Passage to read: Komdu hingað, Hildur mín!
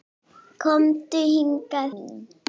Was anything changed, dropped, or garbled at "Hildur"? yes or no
yes